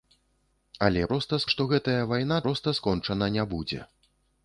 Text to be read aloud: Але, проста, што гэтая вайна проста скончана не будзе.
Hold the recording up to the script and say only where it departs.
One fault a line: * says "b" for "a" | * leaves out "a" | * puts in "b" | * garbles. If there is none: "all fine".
all fine